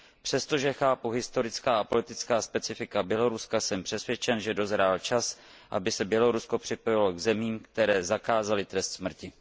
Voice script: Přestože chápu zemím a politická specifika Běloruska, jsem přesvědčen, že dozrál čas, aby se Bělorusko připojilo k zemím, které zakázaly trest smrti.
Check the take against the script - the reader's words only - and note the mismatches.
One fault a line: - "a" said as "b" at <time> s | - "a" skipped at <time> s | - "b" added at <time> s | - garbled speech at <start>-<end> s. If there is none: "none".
- "zemím" said as "historická" at 1.1 s